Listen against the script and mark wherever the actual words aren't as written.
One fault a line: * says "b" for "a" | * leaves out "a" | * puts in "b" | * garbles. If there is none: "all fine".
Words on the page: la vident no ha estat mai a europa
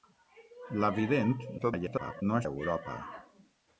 * garbles
* leaves out "estat mai"